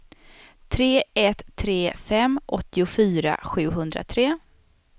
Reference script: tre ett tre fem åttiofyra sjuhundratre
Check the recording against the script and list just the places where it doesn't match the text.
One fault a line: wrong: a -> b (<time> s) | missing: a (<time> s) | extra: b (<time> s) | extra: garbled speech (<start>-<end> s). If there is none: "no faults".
no faults